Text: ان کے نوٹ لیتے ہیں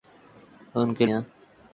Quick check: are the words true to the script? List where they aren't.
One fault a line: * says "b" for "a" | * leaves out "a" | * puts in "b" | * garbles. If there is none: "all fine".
* leaves out "نوٹ لیتے"